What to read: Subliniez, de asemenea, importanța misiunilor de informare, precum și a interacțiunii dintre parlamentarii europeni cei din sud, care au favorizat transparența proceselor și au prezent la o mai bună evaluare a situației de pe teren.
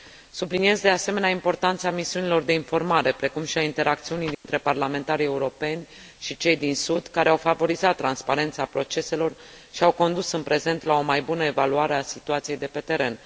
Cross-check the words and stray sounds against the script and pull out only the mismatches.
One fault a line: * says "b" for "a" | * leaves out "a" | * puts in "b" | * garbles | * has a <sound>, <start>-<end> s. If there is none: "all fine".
* has a dropout, 4.3-4.4 s
* puts in "și"
* puts in "condus în"